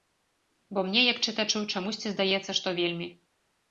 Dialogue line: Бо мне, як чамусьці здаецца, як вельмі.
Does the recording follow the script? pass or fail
fail